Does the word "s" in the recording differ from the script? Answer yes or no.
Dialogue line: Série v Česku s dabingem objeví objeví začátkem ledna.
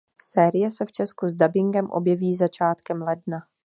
no